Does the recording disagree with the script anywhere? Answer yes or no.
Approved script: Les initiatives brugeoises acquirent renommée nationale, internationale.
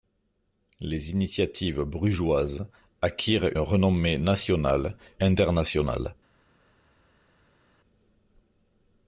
no